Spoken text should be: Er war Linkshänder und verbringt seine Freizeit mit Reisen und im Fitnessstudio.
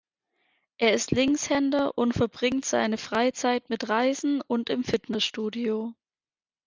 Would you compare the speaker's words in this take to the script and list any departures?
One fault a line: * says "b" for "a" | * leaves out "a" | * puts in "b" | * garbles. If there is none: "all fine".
* says "ist" for "war"